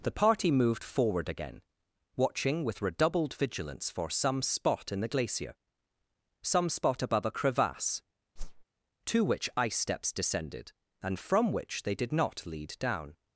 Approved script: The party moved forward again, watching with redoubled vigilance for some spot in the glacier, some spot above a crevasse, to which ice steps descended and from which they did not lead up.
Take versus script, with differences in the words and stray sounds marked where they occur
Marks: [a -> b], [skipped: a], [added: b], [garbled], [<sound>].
The party moved forward again, watching with redoubled vigilance for some spot in the glacier, some spot above a crevasse, [whoosh] to which ice steps descended and from which they did not lead [up. -> down]